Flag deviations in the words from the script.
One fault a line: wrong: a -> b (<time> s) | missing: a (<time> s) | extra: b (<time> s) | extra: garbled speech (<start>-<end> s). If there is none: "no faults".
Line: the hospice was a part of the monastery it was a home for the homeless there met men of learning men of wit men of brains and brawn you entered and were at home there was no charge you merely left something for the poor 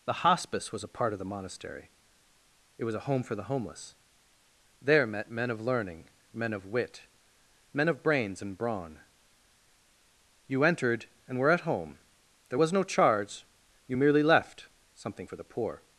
no faults